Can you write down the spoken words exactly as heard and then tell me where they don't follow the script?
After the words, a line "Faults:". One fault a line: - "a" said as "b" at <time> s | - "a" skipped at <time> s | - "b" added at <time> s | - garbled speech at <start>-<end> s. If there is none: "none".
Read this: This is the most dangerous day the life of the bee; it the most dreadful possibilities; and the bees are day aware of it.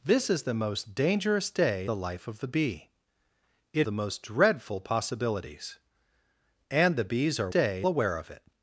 This is the most dangerous day the life of the bee; it the most dreadful possibilities; and the bees are day aware of it.
Faults:
none